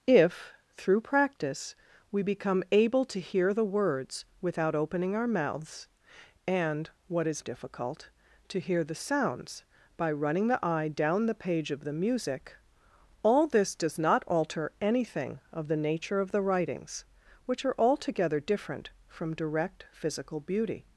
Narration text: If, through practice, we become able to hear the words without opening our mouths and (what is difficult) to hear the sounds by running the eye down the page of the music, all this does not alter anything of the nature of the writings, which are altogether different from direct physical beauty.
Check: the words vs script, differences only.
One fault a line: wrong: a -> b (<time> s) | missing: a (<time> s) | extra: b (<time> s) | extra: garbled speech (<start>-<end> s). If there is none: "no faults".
no faults